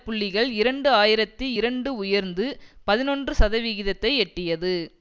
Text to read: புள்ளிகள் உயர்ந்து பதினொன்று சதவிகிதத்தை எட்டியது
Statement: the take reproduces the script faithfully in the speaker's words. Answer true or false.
false